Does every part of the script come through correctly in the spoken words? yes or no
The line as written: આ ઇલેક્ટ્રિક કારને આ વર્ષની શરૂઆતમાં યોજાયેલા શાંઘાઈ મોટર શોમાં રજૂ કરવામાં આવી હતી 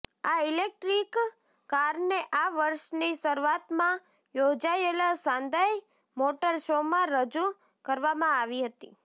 yes